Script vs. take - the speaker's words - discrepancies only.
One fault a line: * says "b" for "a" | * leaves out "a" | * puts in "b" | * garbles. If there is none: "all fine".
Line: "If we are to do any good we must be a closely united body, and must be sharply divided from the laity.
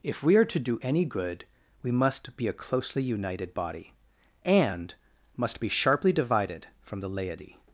all fine